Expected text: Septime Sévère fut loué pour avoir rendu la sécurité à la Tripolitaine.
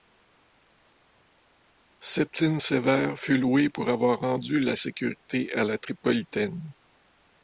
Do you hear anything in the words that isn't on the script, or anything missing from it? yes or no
no